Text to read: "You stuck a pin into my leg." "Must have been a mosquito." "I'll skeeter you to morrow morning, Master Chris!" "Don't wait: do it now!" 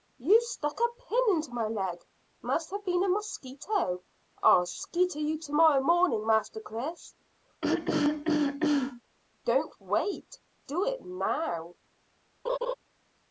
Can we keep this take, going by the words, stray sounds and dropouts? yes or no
no